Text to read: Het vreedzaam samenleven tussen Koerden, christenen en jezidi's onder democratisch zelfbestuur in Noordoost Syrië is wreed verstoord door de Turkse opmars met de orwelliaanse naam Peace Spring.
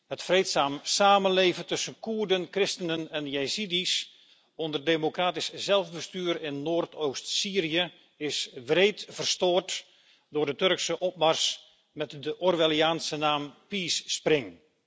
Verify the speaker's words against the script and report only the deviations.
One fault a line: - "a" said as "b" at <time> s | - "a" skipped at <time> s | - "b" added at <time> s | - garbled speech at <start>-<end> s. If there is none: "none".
none